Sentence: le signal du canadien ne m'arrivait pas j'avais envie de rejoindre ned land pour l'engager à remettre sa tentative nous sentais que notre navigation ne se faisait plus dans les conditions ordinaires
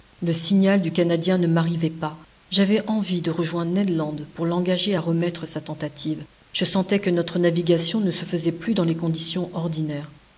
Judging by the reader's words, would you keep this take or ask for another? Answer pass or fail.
fail